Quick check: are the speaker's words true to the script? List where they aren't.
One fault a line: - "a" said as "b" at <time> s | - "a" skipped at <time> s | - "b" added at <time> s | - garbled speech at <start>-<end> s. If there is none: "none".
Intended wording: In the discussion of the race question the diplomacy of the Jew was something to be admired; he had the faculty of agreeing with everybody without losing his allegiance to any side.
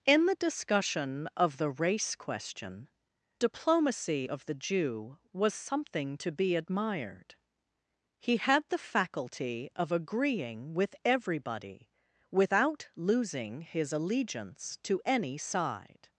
- "the" skipped at 2.9 s